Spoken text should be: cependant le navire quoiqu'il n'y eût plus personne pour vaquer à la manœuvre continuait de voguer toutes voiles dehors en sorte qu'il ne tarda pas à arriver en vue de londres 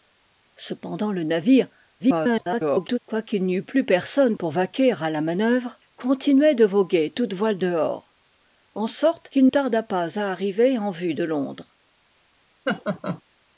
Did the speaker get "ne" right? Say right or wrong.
wrong